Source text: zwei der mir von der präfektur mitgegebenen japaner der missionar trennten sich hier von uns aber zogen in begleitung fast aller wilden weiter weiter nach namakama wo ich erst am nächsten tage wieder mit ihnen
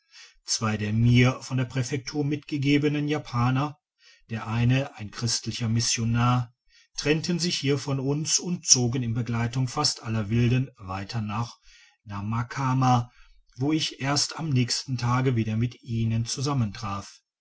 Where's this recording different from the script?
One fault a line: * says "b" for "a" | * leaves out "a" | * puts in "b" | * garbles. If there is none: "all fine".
* puts in "eine ein christlicher"
* says "und" for "aber"
* leaves out "weiter"